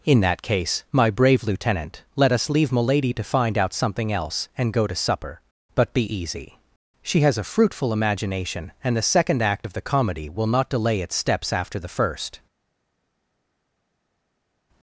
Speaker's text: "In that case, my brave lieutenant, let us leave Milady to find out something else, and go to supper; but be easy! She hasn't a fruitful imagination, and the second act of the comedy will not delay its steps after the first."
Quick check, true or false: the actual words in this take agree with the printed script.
false